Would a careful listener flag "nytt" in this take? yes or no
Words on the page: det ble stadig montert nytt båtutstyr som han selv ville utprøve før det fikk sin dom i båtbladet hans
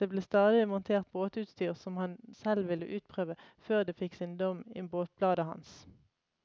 yes